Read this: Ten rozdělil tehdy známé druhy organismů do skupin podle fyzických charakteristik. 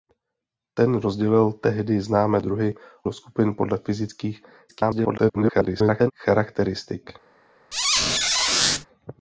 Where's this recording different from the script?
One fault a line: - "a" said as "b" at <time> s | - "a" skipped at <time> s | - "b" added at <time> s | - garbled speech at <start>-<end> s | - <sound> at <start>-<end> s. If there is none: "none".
- "organismů" skipped at 2.8 s
- garbled speech at 4.7-6.1 s
- squeak at 7.7-8.9 s